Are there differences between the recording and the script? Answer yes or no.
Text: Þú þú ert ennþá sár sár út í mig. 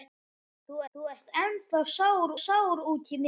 no